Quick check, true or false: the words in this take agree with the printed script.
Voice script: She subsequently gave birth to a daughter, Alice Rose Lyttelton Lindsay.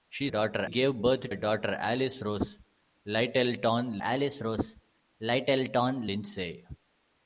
false